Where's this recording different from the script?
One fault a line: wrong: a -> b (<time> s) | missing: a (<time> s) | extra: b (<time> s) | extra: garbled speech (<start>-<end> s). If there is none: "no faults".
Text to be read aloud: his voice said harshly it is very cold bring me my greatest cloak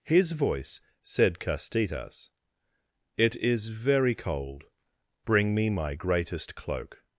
wrong: harshly -> castitas (1.4 s)